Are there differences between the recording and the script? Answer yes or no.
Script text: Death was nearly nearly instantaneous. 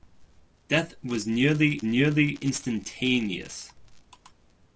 no